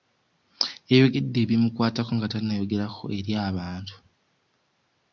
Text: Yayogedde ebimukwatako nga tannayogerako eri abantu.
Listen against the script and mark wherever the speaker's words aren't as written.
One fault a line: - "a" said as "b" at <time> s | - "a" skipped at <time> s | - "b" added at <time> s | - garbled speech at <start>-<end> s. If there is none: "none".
none